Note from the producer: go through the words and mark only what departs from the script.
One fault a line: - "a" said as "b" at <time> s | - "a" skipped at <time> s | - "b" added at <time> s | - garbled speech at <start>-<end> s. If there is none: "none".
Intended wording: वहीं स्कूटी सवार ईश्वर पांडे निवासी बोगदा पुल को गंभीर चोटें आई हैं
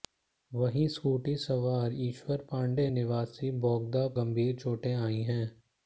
- "पुल को" skipped at 4.1 s